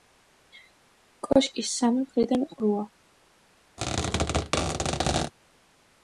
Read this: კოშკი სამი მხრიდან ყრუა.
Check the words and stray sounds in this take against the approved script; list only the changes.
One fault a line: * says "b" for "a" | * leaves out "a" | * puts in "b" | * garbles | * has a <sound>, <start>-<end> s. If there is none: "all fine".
* has a squeak, 3.8-5.3 s